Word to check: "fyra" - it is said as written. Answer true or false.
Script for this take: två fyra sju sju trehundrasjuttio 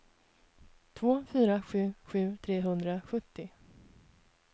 true